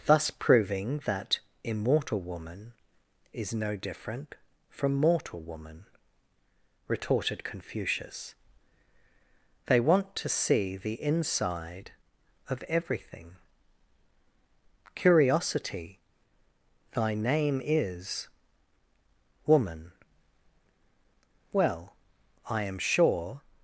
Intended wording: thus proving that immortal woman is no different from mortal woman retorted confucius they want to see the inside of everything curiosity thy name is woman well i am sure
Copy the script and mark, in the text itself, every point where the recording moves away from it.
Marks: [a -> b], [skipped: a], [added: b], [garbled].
thus proving that immortal woman is no different from mortal woman retorted confucius they want to see the inside of everything curiosity thy name is woman well i am sure